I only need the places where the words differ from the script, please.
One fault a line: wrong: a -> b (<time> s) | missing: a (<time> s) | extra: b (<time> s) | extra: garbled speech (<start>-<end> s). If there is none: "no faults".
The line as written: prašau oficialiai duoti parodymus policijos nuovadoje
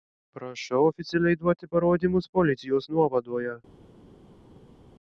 no faults